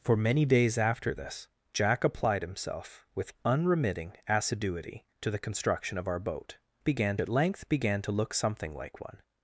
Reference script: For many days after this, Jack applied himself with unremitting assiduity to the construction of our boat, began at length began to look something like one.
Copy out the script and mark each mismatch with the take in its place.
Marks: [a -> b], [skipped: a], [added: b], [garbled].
For many days after this, Jack applied himself with unremitting assiduity to the construction of our boat, began at length began to look something like one.